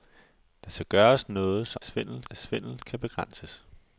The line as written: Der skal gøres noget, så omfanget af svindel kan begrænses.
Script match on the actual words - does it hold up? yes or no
no